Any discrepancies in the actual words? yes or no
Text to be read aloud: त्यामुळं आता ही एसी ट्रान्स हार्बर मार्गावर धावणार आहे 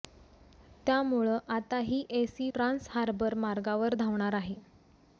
no